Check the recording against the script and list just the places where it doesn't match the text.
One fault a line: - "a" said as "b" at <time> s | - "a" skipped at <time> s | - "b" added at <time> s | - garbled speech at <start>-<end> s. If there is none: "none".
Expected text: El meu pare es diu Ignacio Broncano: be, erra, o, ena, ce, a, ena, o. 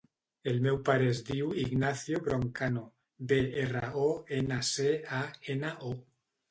none